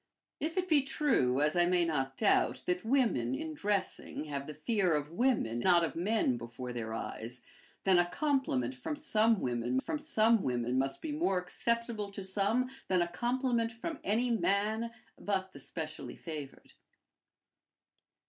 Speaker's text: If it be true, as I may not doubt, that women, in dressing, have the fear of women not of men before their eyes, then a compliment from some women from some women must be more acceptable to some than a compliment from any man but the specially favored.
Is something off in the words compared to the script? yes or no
no